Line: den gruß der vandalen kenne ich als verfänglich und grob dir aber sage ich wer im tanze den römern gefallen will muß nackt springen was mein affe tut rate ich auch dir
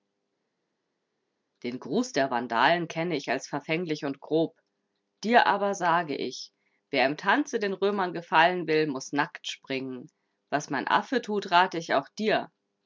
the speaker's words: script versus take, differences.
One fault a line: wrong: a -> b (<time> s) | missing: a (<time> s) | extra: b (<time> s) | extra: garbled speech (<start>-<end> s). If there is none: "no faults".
no faults